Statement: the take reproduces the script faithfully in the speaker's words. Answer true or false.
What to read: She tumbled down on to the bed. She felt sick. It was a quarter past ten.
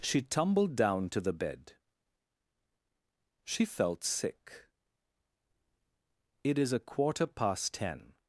false